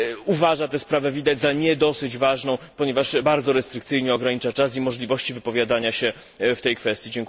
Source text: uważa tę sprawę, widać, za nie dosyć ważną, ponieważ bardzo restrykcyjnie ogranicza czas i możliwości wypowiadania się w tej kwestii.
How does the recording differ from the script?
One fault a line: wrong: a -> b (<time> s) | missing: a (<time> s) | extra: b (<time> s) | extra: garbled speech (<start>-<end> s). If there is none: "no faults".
no faults